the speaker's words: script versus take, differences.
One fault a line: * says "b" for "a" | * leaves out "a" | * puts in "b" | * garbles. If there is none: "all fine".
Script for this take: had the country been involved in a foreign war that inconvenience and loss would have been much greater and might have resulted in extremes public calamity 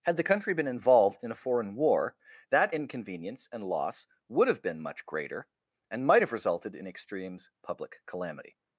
all fine